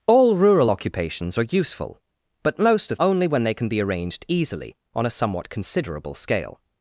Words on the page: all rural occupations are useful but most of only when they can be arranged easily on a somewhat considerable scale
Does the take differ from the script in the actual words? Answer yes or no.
no